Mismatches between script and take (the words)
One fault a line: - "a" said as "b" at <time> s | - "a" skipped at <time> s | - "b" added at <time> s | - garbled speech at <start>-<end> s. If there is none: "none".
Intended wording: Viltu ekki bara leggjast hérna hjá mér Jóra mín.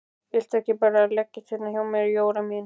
none